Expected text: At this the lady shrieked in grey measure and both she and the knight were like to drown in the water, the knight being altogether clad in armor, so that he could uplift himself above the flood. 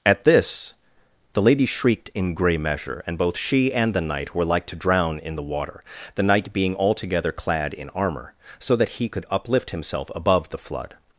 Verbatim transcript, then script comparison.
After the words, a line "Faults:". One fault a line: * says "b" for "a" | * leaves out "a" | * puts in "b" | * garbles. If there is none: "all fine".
At this the lady shrieked in grey measure and both she and the knight were like to drown in the water, the knight being altogether clad in armor, so that he could uplift himself above the flood.
Faults:
all fine